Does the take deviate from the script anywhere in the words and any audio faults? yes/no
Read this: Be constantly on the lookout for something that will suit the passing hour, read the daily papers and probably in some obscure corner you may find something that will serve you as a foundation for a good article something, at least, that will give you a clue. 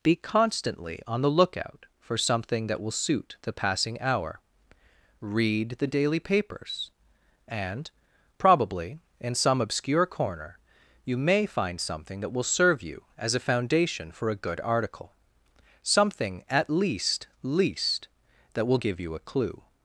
yes